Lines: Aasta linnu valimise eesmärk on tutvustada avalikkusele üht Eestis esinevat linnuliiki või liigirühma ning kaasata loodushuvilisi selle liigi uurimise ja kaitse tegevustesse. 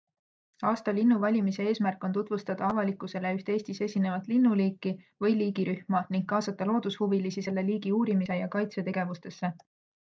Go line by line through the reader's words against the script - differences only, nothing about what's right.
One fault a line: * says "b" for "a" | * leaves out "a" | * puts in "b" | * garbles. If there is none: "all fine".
all fine